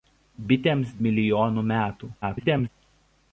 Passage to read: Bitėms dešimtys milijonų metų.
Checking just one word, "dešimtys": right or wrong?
wrong